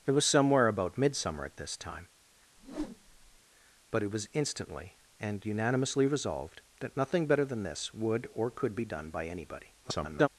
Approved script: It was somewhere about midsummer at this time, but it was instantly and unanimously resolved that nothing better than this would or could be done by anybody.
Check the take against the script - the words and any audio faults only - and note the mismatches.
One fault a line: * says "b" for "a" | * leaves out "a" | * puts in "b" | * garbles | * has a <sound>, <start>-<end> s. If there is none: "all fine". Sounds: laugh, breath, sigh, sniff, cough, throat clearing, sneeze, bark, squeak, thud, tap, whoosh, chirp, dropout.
* has a whoosh, 2.6-3.4 s
* garbles